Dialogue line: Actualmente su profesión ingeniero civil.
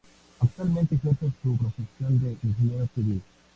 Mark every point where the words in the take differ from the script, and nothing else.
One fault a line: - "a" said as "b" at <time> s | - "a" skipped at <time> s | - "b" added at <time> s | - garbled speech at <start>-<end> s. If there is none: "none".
- "ejerce" added at 0.9 s
- "de" added at 2.2 s